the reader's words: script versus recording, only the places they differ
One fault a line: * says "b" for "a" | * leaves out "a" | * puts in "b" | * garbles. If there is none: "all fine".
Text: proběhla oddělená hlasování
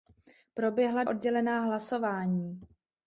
all fine